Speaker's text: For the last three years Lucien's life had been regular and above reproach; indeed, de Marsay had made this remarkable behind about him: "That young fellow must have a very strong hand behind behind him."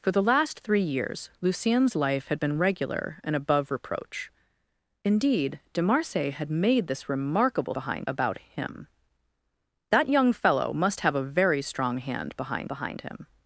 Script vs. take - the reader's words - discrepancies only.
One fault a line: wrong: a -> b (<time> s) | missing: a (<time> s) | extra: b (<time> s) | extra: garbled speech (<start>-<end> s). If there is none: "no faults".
no faults